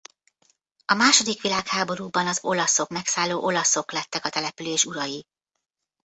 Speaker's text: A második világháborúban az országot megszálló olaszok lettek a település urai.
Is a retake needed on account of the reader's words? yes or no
yes